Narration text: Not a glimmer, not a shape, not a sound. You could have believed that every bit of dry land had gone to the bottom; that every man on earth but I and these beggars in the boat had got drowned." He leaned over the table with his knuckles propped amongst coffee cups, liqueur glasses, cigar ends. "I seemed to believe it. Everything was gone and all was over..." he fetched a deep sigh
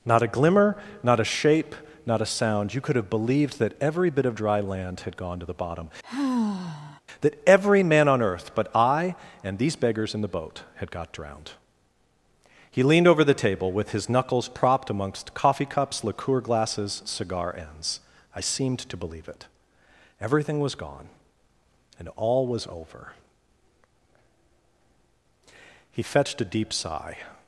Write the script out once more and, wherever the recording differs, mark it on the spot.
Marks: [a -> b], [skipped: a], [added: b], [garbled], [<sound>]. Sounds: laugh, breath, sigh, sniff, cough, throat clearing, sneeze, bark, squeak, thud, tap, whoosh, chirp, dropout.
Not a glimmer, not a shape, not a sound. You could have believed that every bit of dry land had gone to the bottom; [sigh] that every man on earth but I and these beggars in the boat had got drowned." He leaned over the table with his knuckles propped amongst coffee cups, liqueur glasses, cigar ends. "I seemed to believe it. Everything was gone and all was over..." he fetched a deep sigh